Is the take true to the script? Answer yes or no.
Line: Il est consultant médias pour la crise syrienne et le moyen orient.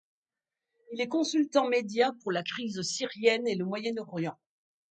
yes